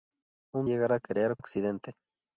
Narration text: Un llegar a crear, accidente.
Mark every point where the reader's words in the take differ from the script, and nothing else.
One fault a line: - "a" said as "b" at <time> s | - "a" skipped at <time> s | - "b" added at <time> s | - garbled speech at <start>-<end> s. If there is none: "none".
none